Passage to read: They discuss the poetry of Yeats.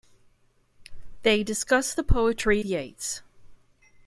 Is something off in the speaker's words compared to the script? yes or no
yes